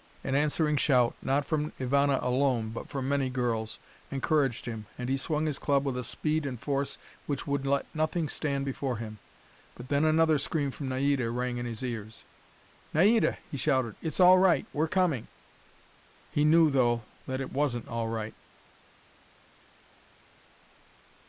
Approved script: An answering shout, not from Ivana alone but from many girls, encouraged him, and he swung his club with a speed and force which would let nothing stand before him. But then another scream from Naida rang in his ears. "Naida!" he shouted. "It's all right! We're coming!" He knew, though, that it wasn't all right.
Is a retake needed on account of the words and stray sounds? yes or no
no